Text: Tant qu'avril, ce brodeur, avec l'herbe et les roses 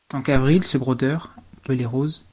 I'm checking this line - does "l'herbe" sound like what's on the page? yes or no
no